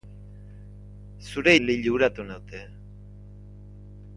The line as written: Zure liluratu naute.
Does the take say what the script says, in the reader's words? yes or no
yes